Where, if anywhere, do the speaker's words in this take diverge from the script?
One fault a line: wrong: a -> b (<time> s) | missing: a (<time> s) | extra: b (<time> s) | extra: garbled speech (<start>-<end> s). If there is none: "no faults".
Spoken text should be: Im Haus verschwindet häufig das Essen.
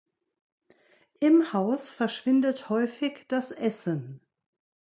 no faults